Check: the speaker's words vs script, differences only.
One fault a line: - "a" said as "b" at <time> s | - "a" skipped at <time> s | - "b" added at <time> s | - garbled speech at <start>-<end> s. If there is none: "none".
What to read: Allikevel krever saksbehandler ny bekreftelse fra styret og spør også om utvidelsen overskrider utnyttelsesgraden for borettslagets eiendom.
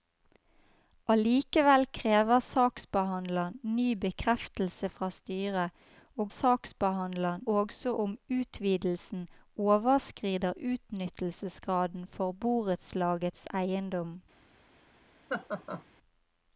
- "spør" said as "saksbehandler" at 6.3 s